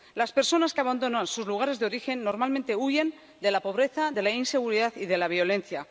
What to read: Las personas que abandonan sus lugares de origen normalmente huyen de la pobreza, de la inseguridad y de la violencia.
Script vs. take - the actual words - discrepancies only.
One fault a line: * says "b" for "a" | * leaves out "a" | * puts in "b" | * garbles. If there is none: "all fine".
all fine